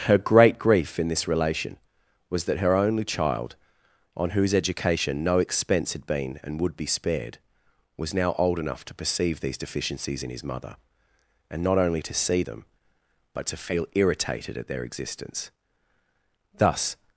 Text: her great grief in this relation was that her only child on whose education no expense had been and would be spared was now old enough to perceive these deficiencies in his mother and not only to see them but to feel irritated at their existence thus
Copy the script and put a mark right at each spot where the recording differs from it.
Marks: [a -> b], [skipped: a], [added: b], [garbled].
her great grief in this relation was that her only child on whose education no expense had been and would be spared was now old enough to perceive these deficiencies in his mother and not only to see them but to feel irritated at their existence thus